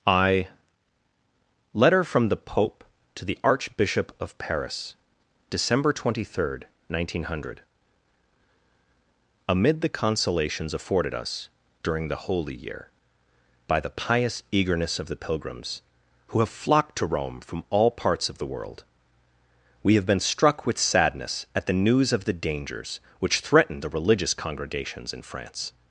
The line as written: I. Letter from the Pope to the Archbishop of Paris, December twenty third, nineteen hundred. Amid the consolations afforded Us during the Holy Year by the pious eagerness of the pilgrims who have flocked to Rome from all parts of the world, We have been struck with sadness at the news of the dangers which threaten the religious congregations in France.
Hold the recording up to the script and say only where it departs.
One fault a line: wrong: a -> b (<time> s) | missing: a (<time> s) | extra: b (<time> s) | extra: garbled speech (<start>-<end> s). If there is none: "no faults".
no faults